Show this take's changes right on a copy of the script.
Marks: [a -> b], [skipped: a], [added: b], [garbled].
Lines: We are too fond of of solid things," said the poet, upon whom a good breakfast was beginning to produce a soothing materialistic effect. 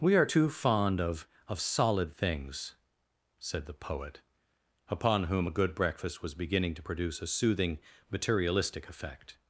We are too fond of of solid things," said the poet, upon whom a good breakfast was beginning to produce a soothing materialistic effect.